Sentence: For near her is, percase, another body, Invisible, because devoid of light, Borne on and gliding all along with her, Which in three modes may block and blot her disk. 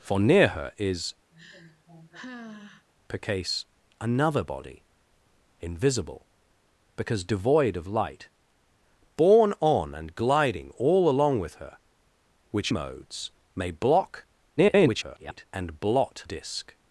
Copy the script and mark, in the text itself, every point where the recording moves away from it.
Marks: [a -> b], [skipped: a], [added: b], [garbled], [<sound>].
For near her is, [sigh] percase, another body, Invisible, because devoid of light, Borne on and gliding all along with her, Which [skipped: in three] modes may block [garbled] and blot [skipped: her] disk.